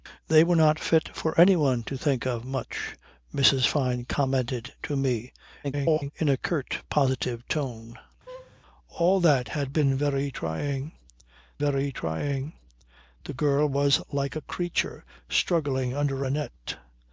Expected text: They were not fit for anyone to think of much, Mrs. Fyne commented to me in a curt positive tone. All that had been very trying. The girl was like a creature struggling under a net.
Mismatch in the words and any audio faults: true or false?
true